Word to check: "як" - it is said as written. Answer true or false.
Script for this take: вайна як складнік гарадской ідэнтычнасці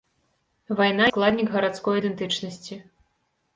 false